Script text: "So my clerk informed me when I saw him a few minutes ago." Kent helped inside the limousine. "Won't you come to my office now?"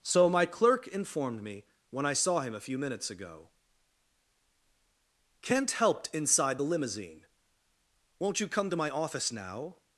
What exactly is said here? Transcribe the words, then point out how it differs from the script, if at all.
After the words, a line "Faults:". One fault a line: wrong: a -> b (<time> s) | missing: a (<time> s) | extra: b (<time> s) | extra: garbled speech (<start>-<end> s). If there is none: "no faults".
"So my clerk informed me when I saw him a few minutes ago." Kent helped inside the limousine. "Won't you come to my office now?"
Faults:
no faults